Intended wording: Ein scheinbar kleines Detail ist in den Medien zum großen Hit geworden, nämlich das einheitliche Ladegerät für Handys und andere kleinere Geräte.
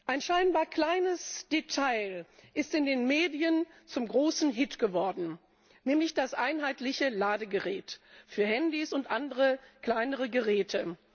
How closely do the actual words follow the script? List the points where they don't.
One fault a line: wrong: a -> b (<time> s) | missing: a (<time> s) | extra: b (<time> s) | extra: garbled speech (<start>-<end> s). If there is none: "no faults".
no faults